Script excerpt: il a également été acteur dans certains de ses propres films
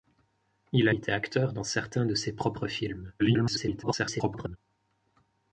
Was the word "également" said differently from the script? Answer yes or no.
yes